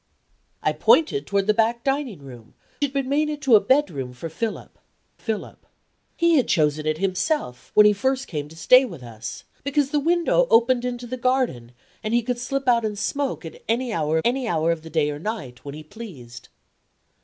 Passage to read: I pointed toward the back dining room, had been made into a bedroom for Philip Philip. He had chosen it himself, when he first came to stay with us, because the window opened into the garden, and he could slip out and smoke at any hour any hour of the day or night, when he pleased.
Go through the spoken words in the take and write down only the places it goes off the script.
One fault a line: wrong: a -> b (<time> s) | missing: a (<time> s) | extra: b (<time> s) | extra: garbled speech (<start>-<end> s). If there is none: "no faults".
no faults